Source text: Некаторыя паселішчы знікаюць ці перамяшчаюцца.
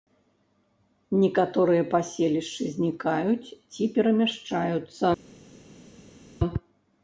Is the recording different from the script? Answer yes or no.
no